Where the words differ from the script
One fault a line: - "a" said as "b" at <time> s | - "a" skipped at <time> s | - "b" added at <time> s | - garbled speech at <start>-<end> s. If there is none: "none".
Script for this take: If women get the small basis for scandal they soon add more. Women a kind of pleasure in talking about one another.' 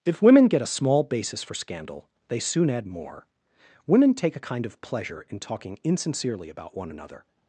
- "the" said as "a" at 0.6 s
- "take" added at 4.1 s
- "insincerely" added at 5.8 s